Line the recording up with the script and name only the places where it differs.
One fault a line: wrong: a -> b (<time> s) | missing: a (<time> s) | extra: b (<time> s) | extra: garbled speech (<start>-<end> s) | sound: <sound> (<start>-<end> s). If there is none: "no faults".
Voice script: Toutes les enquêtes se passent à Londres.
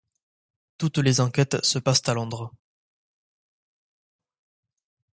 no faults